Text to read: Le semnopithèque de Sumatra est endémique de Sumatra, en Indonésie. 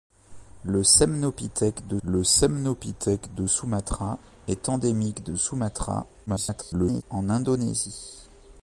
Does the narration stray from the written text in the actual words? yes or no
yes